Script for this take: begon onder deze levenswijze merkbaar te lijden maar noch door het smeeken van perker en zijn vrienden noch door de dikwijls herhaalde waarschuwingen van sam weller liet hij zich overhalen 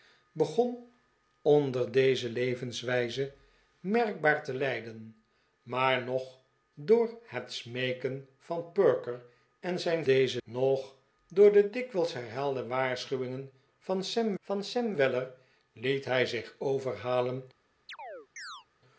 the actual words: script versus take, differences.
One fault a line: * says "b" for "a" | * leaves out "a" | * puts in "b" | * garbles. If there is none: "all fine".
* says "deze" for "vrienden"
* puts in "van sam"